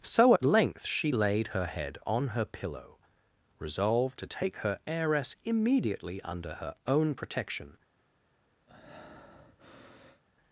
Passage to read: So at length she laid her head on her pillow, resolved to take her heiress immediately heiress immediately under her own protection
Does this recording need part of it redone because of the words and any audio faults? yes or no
yes